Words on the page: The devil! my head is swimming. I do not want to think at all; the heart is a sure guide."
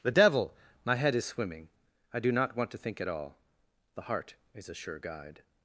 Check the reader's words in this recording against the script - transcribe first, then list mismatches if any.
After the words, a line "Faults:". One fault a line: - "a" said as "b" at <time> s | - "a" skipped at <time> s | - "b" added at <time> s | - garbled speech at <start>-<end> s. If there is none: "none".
The devil! my head is swimming. I do not want to think at all; the heart is a sure guide."
Faults:
none